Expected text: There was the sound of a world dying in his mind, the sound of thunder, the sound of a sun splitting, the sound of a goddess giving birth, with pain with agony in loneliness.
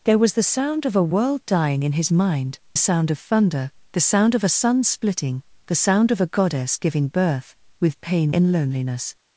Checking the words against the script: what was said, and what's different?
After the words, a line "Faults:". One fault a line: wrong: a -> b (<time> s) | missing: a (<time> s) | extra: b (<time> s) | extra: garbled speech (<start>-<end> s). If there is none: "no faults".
There was the sound of a world dying in his mind, sound of thunder, the sound of a sun splitting, the sound of a goddess giving birth, with pain in loneliness.
Faults:
missing: the (2.6 s)
missing: with agony (8.3 s)